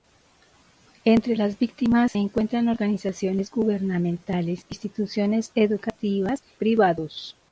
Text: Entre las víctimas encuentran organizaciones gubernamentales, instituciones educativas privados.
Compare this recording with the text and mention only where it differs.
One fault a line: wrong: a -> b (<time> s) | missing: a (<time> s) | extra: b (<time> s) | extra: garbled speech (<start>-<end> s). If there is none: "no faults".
no faults